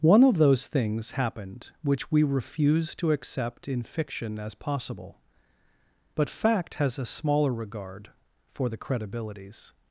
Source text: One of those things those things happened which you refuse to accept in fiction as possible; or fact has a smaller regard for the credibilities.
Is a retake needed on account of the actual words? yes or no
yes